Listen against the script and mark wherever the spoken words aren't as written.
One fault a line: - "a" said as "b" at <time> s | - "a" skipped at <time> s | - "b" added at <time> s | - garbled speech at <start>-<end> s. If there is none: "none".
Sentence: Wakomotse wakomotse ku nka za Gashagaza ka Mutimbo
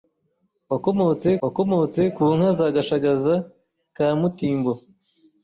none